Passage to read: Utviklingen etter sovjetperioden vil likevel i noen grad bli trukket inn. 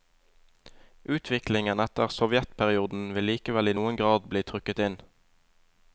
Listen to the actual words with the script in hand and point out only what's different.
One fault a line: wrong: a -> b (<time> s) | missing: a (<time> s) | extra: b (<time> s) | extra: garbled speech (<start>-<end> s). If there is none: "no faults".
no faults